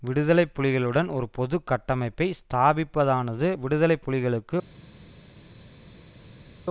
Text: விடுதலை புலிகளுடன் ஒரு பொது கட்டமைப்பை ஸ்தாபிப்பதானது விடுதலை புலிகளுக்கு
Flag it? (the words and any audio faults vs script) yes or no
no